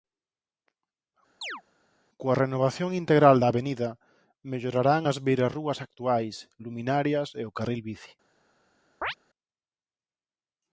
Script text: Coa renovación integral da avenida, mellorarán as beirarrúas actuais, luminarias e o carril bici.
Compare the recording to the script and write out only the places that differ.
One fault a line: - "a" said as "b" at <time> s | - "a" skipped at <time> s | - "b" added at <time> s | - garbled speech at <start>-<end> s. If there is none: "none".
none